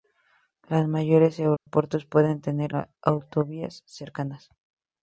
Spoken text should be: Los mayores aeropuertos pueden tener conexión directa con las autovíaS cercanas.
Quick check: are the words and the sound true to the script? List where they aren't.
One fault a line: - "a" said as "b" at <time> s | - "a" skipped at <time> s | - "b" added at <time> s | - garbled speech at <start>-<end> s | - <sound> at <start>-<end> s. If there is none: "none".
- dropout at 1.6-1.7 s
- "conexión directa con" skipped at 2.8 s